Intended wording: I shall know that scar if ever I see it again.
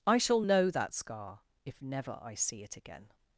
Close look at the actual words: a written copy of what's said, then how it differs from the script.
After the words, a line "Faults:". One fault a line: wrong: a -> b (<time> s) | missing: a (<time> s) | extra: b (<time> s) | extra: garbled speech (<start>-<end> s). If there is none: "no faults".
I shall know that scar if never I see it again.
Faults:
wrong: ever -> never (1.8 s)